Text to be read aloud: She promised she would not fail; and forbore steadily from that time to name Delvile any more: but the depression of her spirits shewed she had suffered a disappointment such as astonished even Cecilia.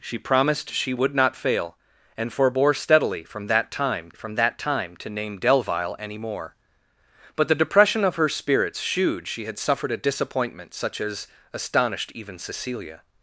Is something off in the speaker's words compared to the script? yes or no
yes